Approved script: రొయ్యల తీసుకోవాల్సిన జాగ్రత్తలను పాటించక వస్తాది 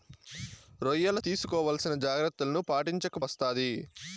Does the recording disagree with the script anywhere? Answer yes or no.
no